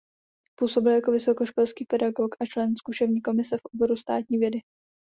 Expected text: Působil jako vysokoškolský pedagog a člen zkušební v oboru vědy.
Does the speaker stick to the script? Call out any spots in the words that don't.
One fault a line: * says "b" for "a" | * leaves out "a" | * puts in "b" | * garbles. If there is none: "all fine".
* puts in "komise"
* puts in "státní"